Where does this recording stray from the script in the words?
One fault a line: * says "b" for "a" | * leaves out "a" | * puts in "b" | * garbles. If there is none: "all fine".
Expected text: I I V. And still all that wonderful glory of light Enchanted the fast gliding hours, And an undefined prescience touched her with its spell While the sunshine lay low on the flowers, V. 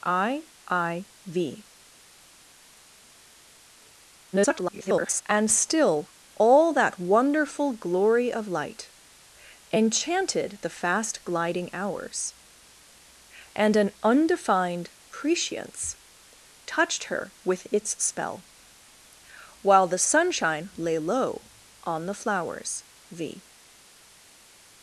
* garbles